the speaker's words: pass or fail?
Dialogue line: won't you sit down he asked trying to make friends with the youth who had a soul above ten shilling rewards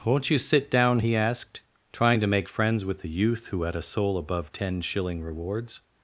pass